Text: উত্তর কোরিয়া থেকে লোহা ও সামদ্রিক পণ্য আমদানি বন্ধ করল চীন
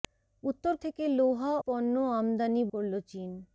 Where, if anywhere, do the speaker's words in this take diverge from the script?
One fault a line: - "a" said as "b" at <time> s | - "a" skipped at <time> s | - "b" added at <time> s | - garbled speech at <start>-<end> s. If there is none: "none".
- "কোরিয়া" skipped at 0.7 s
- "ও সামদ্রিক" skipped at 1.5 s
- "বন্ধ" skipped at 2.6 s